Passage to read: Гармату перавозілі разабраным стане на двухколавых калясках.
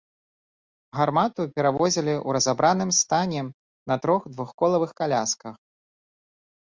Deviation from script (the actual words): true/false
true